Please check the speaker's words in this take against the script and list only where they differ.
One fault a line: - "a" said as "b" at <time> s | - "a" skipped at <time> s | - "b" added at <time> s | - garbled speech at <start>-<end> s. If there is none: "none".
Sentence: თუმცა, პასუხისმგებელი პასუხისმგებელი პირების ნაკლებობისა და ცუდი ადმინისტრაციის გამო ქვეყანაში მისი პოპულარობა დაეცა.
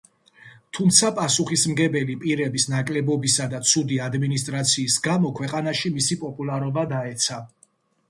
- "პასუხისმგებელი" skipped at 2.1 s